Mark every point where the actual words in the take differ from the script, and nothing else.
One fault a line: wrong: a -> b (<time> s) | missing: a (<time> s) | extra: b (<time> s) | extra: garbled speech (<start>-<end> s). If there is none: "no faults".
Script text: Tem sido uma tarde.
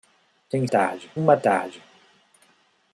wrong: sido -> tarde (0.6 s)